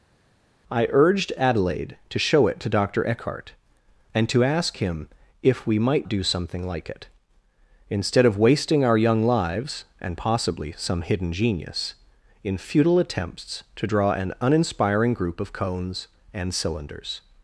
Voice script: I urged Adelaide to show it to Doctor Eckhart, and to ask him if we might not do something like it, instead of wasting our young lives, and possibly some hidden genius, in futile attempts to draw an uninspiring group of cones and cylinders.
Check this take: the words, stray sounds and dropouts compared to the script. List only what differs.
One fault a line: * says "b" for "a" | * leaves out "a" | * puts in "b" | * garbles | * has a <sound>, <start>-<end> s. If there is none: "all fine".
* leaves out "not"